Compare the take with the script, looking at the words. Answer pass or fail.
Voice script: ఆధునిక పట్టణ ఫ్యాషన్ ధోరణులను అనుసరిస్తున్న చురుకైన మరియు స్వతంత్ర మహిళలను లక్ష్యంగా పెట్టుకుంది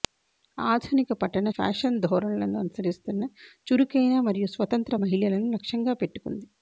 pass